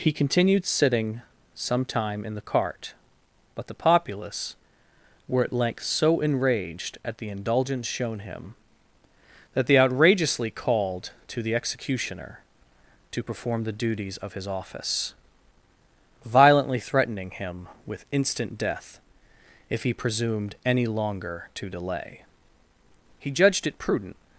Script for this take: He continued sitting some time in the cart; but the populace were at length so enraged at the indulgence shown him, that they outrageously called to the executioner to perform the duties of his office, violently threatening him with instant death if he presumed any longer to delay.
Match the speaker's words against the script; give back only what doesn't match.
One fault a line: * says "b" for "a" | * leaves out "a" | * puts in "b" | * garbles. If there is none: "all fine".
* puts in "He judged it prudent"